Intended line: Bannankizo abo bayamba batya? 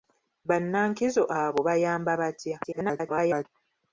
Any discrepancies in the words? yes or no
yes